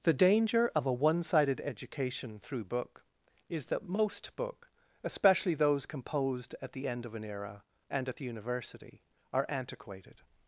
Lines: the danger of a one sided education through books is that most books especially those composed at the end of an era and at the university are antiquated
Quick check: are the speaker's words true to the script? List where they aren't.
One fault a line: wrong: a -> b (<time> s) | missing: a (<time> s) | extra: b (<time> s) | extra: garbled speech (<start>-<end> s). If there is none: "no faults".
wrong: books -> book (2.6 s)
wrong: books -> book (4.3 s)